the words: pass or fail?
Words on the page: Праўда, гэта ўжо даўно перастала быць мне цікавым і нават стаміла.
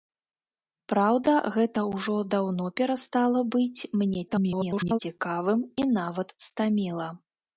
fail